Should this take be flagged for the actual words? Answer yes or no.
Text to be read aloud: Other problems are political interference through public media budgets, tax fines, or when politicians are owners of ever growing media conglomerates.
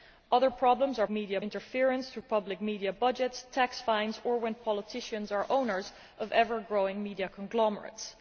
yes